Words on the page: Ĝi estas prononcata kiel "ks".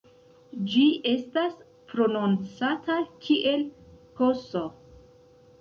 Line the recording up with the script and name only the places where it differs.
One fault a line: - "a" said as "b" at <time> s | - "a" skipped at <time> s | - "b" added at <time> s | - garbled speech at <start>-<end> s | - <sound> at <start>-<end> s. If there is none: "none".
none